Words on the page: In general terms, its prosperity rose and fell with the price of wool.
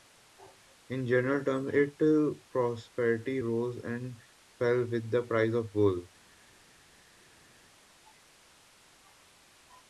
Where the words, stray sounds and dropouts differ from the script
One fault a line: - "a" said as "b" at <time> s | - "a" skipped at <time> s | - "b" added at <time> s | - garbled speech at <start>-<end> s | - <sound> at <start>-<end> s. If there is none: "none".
none